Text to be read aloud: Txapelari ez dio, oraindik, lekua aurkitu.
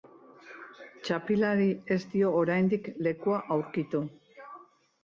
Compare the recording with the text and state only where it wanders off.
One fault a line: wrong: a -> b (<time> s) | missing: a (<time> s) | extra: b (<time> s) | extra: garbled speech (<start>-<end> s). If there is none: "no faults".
no faults